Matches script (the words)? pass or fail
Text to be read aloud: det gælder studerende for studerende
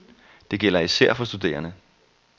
fail